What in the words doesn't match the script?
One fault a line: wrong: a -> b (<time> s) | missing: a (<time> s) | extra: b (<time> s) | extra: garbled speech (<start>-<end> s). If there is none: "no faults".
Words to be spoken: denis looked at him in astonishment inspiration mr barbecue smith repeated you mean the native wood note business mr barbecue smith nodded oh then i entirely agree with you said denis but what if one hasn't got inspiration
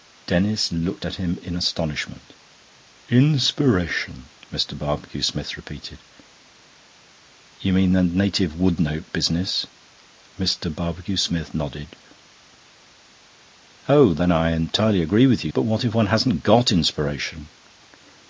missing: said denis (15.5 s)